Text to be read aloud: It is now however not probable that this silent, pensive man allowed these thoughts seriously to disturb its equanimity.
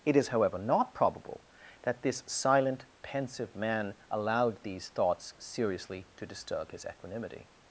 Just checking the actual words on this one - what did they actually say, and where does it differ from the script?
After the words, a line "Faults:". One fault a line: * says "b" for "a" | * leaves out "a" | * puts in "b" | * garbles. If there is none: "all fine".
It is however not probable that this silent, pensive man allowed these thoughts seriously to disturb his equanimity.
Faults:
* leaves out "now"
* says "his" for "its"